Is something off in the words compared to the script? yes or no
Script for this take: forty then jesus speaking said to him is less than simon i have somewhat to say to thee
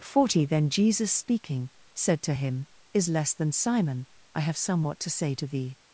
no